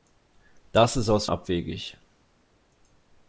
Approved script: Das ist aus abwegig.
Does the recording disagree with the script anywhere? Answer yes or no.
no